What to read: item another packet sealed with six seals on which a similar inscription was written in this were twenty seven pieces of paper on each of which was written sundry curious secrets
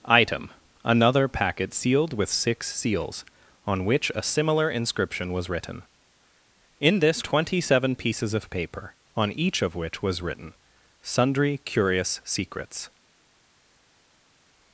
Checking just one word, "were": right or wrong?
wrong